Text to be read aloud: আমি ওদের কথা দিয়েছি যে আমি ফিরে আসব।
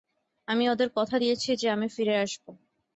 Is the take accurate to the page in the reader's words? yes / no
yes